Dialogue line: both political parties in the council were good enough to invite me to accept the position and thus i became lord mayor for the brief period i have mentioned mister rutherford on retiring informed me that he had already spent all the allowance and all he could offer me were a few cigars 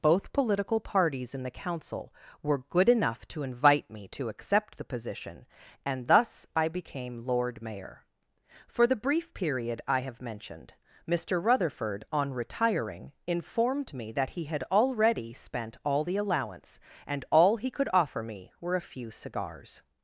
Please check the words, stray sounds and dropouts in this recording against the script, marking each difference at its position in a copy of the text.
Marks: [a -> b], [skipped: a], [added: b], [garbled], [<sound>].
both political parties in the council were good enough to invite me to accept the position and thus i became lord mayor for the brief period i have mentioned mister rutherford on retiring informed me that he had already spent all the allowance and all he could offer me were a few cigars